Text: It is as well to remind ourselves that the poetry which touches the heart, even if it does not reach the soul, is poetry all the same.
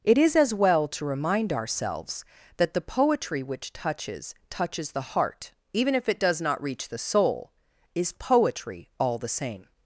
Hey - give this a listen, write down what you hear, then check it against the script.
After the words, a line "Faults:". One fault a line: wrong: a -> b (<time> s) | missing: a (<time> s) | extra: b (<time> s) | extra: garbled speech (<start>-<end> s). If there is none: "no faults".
It is as well to remind ourselves that the poetry which touches touches the heart, even if it does not reach the soul, is poetry all the same.
Faults:
extra: touches (4.5 s)